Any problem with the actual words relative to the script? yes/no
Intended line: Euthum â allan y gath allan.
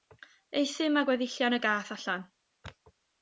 yes